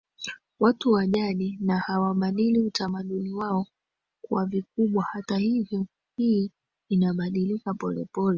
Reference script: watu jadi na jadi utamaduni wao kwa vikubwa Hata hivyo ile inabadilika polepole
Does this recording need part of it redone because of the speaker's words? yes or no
yes